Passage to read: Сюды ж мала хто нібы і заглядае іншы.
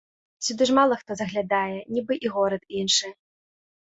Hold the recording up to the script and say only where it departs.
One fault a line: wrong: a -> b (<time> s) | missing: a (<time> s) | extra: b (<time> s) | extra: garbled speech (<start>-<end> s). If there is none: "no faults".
extra: заглядае (1.2 s)
wrong: заглядае -> горад (2.3 s)